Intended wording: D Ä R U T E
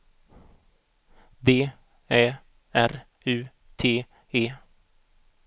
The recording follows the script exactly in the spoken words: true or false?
true